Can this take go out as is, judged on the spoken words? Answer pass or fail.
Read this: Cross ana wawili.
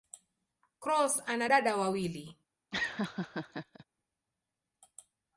fail